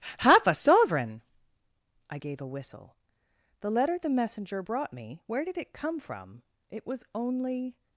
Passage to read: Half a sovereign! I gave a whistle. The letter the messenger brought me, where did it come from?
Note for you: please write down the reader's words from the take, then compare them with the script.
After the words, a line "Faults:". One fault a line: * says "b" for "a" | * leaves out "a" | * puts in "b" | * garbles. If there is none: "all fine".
Half a sovereign! I gave a whistle. The letter the messenger brought me, where did it come from? It was only
Faults:
* puts in "It was only"